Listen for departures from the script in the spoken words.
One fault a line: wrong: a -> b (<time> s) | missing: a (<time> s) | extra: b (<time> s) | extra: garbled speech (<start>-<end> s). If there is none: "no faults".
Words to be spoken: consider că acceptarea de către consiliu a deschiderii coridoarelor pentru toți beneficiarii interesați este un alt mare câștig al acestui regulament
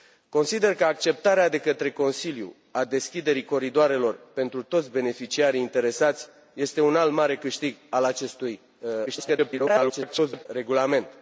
extra: garbled speech (9.1-10.5 s)